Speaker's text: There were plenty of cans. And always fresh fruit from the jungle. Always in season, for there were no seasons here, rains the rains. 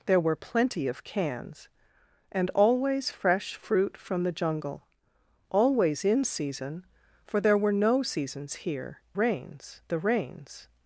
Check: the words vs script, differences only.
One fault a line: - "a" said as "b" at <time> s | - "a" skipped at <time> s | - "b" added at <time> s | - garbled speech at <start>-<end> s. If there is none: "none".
none